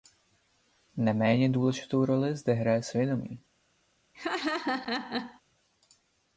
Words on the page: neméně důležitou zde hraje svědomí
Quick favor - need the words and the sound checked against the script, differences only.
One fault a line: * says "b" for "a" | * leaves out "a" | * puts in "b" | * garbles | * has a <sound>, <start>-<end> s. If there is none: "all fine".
* puts in "roli"
* has a laugh, 4.1-5.4 s